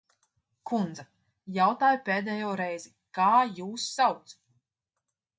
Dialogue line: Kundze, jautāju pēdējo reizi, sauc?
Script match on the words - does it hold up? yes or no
no